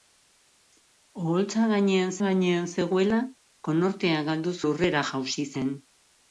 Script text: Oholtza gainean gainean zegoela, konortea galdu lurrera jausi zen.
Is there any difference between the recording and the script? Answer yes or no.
no